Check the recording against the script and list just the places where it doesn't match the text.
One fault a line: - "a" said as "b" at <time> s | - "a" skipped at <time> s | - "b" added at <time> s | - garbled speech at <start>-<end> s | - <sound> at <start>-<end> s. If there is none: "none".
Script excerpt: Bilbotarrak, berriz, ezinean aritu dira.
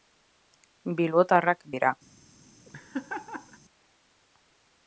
- "berriz ezinean aritu" skipped at 1.6 s
- laugh at 2.7-3.6 s